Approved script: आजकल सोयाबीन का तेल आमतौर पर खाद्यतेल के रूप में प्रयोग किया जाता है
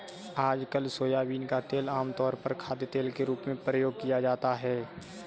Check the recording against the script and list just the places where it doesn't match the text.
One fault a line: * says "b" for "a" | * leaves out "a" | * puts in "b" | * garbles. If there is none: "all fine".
all fine